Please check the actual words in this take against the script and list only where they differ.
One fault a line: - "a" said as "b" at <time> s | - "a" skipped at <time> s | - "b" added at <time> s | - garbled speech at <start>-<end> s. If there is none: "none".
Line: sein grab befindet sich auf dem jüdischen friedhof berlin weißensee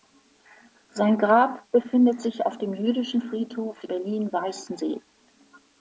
none